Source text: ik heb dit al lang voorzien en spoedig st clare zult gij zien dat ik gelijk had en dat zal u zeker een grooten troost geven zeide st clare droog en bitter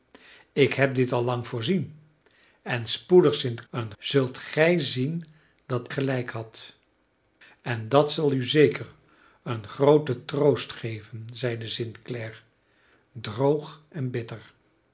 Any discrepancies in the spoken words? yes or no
yes